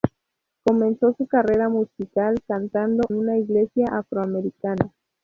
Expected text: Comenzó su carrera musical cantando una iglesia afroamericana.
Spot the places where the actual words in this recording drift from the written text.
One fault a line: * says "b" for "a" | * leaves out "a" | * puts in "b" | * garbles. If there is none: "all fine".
all fine